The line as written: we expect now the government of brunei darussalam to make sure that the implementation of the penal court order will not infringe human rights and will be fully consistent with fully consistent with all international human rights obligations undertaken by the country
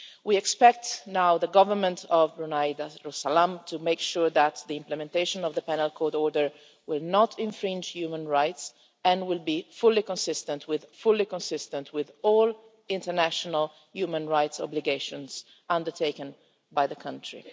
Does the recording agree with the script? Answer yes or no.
yes